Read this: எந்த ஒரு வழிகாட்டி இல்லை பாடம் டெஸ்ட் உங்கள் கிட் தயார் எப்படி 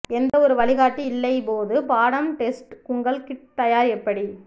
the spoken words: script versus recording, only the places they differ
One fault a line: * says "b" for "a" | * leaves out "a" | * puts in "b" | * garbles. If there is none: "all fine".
* puts in "போது"